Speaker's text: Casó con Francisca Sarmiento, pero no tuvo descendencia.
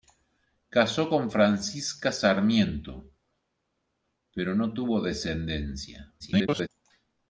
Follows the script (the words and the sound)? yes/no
no